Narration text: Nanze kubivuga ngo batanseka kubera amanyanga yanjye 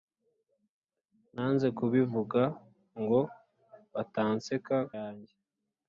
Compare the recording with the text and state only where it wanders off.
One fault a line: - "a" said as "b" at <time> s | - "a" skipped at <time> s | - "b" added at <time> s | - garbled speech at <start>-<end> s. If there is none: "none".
- "kubera amanyanga" skipped at 4.8 s